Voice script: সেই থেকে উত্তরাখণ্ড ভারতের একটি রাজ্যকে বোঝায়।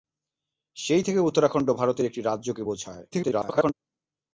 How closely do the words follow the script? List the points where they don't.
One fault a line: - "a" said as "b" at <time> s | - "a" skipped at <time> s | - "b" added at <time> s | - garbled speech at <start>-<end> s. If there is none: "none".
- garbled speech at 3.1-3.7 s